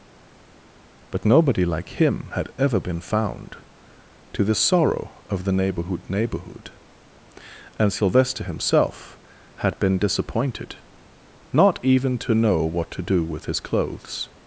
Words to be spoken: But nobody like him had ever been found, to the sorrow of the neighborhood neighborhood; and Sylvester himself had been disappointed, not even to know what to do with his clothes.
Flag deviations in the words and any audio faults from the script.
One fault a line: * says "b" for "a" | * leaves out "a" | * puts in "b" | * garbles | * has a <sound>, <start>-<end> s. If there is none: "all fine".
all fine